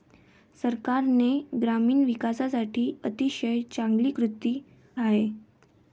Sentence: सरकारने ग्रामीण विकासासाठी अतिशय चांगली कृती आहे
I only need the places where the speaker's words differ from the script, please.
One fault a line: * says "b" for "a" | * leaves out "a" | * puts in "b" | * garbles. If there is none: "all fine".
all fine